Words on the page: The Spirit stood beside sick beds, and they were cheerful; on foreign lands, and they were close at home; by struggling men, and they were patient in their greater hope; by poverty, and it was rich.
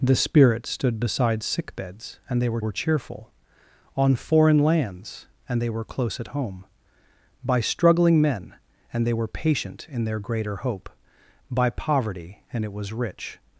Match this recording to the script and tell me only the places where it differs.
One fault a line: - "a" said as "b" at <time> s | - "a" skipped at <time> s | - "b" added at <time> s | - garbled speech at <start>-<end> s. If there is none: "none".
- "were" added at 2.6 s